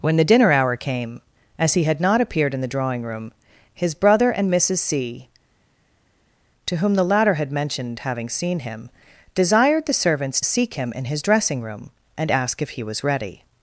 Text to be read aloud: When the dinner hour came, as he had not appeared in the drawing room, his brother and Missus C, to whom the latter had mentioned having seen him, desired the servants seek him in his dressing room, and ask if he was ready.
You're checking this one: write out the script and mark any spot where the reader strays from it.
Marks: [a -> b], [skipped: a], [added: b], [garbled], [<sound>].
When the dinner hour came, as he had not appeared in the drawing room, his brother and Missus C, to whom the latter had mentioned having seen him, desired the servants seek him in his dressing room, and ask if he was ready.